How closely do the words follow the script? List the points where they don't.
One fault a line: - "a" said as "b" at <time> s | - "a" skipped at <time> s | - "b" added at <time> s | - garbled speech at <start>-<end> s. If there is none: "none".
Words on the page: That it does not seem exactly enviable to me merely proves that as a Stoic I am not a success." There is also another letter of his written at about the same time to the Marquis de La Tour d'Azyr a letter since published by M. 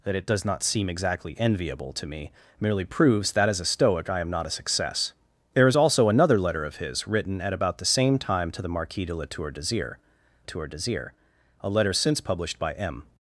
- "Tour d'Azyr" added at 10.4 s